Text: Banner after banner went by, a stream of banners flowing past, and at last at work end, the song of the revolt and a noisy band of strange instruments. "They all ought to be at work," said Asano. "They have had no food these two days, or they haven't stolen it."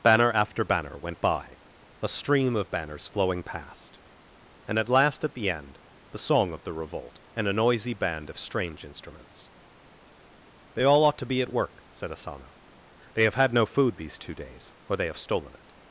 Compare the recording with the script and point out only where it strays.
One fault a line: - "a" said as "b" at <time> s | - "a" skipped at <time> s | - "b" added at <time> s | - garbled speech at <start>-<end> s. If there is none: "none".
- "work" said as "the" at 5.3 s
- "haven't" said as "have" at 15.1 s